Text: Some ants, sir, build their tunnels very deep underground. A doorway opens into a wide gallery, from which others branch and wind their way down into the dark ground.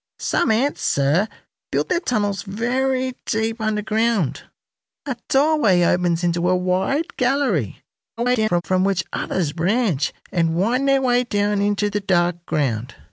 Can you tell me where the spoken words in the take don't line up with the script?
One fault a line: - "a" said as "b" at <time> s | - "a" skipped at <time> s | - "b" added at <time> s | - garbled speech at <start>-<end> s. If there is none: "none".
- garbled speech at 8.2-8.6 s